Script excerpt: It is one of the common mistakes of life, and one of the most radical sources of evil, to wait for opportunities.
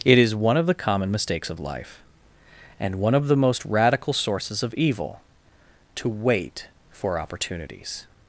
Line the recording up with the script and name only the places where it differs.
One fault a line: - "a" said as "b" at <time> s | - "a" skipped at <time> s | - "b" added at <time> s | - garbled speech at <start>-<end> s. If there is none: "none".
none